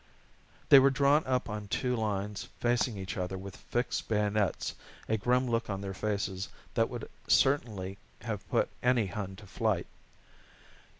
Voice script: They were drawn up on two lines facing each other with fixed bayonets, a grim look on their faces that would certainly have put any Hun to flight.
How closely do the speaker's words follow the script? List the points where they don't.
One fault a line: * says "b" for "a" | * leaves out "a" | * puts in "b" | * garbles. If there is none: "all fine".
all fine